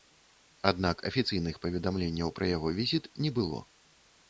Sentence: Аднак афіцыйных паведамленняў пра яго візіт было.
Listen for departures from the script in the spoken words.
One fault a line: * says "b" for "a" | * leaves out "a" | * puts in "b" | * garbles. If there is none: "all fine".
* puts in "не"